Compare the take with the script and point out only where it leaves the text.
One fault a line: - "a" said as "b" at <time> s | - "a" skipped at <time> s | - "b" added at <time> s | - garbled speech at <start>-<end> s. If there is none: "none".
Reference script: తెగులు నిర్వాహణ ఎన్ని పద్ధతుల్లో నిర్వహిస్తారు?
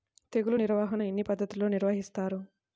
none